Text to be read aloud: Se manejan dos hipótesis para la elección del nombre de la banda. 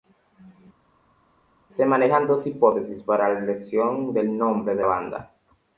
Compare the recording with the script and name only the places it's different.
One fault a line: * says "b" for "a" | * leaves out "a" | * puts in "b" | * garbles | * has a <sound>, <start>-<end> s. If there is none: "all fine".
* leaves out "la"